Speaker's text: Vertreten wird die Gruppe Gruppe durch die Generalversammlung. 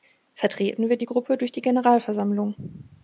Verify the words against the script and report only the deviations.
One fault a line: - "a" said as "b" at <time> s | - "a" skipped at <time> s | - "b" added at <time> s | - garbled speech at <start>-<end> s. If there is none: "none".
- "Gruppe" skipped at 1.4 s